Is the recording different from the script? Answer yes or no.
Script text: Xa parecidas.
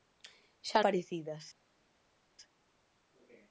no